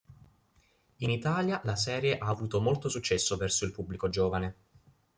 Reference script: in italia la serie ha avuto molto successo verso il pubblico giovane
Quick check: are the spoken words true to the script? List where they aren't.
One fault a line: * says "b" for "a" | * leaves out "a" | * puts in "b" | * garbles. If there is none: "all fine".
all fine